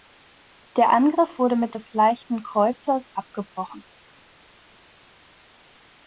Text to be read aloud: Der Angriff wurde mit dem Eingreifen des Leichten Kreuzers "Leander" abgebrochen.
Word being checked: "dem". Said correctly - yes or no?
no